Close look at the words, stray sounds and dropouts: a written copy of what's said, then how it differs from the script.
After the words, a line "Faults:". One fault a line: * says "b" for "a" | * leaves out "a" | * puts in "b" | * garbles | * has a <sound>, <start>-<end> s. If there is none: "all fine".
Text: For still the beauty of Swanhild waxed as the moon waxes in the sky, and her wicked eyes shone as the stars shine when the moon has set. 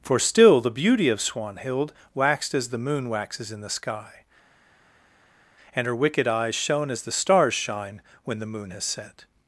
For still the beauty of Swanhild waxed as the moon waxes in the sky, and her wicked eyes shone as the stars shine when the moon has set.
Faults:
all fine